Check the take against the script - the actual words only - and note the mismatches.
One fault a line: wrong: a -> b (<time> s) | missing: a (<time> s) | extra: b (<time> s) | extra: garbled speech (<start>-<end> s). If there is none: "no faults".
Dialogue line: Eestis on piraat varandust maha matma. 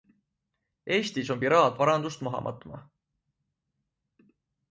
no faults